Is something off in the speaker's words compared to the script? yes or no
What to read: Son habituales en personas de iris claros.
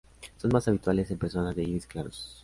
yes